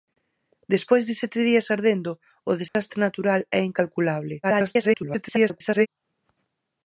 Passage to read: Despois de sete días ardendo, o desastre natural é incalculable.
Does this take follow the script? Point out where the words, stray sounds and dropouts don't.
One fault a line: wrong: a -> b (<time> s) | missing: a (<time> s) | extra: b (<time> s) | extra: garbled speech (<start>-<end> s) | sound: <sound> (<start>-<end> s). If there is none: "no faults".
sound: dropout (2.7-2.8 s)
extra: garbled speech (4.4-5.9 s)